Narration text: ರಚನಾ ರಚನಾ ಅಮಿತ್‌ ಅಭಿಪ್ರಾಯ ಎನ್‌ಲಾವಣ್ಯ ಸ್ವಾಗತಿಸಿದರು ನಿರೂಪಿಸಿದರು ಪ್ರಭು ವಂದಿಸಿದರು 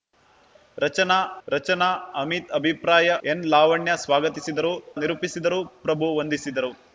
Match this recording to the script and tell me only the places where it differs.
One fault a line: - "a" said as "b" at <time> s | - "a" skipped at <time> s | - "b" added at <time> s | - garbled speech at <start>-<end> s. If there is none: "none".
none